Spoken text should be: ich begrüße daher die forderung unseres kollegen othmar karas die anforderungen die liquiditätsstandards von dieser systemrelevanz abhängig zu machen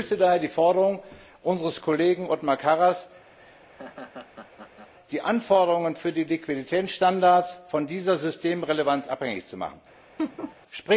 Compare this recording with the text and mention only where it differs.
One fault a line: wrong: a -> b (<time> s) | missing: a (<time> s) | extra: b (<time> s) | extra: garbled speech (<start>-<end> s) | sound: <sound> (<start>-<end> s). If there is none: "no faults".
sound: laugh (3.4-4.9 s)
extra: für (5.9 s)
sound: laugh (10.2-10.6 s)